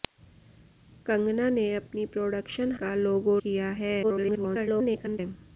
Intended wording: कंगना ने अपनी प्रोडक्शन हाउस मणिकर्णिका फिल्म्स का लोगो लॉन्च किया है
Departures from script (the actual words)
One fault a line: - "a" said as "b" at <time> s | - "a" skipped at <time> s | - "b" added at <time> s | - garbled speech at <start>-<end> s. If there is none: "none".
- "हाउस मणिकर्णिका फिल्म्स" skipped at 2.7 s
- "लॉन्च" skipped at 3.4 s
- garbled speech at 4.0-5.2 s